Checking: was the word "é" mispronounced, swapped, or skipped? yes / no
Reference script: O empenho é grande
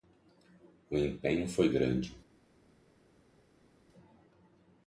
yes